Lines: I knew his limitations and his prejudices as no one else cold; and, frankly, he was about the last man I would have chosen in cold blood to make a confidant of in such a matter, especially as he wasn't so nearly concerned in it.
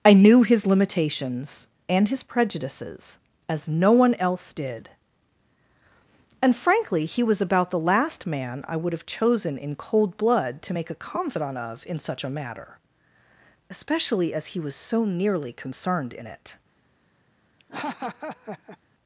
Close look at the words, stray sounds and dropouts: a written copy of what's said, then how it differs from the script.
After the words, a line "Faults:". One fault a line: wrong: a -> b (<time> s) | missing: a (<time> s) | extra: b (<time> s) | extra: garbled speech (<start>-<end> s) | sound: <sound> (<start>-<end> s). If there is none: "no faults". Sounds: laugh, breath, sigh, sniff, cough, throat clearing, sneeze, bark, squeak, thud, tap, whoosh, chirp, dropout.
I knew his limitations and his prejudices as no one else did; and, frankly, he was about the last man I would have chosen in cold blood to make a confidant of in such a matter, especially as he was so nearly concerned in it.
Faults:
wrong: cold -> did (4.5 s)
wrong: wasn't -> was (14.6 s)
sound: laugh (17.6-18.8 s)